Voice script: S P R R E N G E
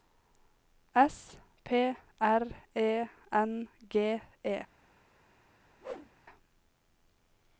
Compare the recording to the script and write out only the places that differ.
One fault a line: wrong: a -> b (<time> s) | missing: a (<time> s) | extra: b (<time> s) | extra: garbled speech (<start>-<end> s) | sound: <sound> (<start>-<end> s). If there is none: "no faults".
missing: R (2.4 s)
sound: whoosh (5.8-6.1 s)